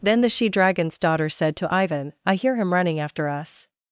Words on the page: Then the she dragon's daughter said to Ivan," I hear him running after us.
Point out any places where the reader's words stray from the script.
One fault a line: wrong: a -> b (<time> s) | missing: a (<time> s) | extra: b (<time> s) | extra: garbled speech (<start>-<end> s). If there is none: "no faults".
no faults